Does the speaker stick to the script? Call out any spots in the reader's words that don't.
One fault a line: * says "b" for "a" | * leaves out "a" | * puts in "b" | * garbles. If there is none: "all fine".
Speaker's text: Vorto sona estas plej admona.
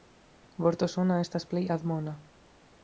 all fine